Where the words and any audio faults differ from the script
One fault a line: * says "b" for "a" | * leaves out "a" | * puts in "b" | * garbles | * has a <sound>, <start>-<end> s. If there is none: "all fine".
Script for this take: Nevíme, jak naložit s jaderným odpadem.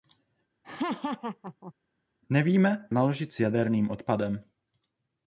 * has a laugh, 0.6-1.7 s
* leaves out "jak"